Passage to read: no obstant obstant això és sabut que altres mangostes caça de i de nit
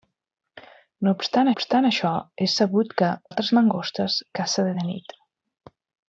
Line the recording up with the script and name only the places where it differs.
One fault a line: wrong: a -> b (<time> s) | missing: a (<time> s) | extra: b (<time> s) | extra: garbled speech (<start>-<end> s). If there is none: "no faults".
no faults